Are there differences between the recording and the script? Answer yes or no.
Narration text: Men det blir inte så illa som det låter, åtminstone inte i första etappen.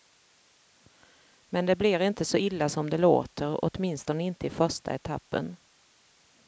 no